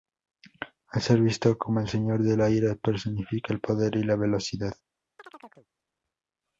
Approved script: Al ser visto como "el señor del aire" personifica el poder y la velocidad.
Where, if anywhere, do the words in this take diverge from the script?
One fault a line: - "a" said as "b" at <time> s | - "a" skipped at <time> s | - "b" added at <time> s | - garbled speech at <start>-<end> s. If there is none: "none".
none